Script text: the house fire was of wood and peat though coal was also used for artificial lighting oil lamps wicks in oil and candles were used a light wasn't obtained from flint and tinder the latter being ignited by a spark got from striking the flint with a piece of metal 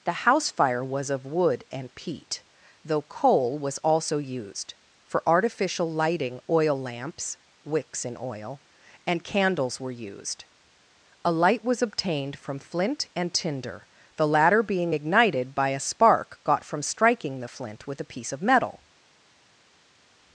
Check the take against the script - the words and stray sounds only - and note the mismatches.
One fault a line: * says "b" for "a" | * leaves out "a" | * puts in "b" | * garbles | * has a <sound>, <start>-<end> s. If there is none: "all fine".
* says "was" for "wasn't"